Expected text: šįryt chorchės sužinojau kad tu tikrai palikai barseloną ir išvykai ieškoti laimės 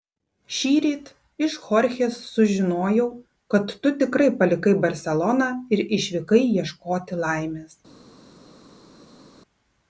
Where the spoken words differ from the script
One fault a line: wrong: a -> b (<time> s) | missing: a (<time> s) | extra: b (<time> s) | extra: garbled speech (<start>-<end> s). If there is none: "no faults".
extra: iš (1.5 s)